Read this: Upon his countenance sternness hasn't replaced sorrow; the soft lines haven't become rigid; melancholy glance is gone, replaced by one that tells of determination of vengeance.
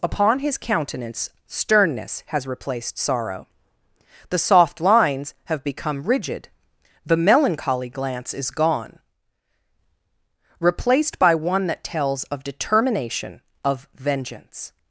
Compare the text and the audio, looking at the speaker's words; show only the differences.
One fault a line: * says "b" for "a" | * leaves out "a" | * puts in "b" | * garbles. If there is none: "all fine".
* says "has" for "hasn't"
* says "have" for "haven't"
* puts in "the"